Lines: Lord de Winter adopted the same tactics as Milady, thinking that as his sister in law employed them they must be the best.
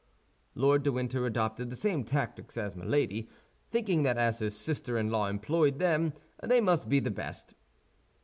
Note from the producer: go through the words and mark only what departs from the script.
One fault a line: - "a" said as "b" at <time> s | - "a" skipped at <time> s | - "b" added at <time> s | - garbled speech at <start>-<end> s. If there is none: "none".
none